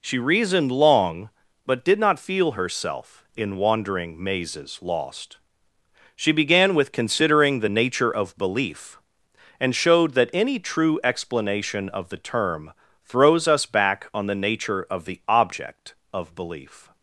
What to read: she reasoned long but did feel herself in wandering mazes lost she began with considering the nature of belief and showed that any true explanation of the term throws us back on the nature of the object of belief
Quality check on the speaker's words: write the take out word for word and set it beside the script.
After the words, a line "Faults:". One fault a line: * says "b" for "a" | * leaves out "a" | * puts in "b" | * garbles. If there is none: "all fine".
she reasoned long but did not feel herself in wandering mazes lost she began with considering the nature of belief and showed that any true explanation of the term throws us back on the nature of the object of belief
Faults:
* puts in "not"